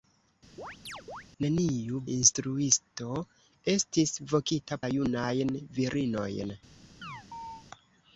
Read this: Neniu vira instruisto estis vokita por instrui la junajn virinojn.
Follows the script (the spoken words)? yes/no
no